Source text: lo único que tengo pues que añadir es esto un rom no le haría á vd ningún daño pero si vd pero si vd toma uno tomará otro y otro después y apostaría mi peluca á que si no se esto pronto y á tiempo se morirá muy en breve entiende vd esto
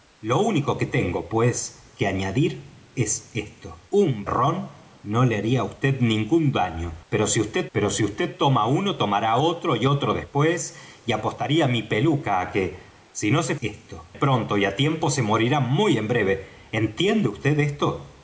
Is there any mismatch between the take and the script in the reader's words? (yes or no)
no